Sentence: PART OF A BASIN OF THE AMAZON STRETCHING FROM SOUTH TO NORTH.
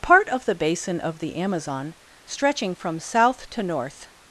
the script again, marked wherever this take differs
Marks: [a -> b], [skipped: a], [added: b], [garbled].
PART OF [A -> THE] BASIN OF THE AMAZON STRETCHING FROM SOUTH TO NORTH.